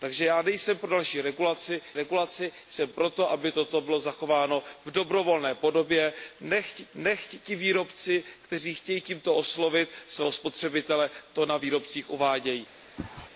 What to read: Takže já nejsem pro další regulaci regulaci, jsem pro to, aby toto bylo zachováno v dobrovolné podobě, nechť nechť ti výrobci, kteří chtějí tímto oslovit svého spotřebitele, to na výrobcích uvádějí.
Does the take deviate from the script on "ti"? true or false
false